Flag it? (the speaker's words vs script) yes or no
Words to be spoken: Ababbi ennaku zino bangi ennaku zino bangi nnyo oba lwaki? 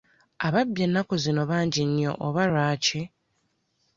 yes